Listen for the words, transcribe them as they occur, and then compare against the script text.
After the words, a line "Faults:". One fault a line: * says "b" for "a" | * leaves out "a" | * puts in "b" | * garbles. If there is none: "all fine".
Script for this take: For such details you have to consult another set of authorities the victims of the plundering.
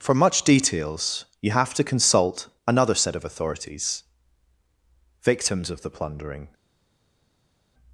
For much details you have to consult another set of authorities victims of the plundering.
Faults:
* says "much" for "such"
* leaves out "the"